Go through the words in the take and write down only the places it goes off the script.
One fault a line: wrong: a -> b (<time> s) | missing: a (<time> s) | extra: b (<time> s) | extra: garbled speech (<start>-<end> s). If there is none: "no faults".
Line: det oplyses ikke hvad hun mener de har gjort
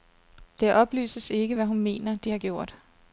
no faults